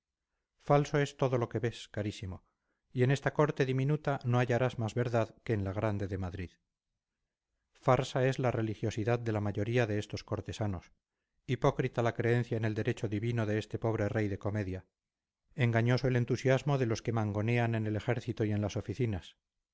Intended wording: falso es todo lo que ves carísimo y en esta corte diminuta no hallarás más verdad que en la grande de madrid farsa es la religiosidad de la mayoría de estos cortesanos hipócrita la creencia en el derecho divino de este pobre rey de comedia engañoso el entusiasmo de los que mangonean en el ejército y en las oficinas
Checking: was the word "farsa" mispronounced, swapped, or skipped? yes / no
no